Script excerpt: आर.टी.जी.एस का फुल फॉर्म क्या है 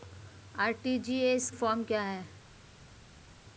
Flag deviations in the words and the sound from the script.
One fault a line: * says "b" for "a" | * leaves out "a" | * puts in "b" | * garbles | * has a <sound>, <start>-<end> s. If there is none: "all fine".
* leaves out "का फुल"